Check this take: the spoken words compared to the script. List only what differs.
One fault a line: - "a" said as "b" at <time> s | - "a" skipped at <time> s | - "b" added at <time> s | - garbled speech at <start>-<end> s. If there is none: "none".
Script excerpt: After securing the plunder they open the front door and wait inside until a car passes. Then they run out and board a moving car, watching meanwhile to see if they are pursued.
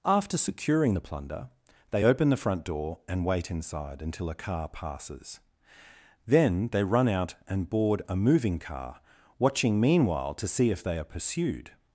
none